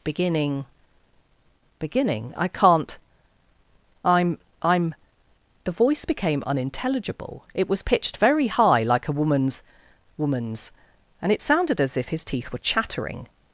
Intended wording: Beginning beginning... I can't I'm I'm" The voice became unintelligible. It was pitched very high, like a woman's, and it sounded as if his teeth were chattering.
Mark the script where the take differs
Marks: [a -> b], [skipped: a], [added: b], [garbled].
Beginning beginning... I can't I'm I'm" The voice became unintelligible. It was pitched very high, like a woman's, [added: woman's] and it sounded as if his teeth were chattering.